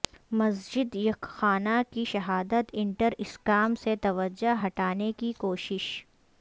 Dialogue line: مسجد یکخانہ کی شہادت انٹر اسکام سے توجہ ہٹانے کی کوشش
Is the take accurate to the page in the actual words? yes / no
yes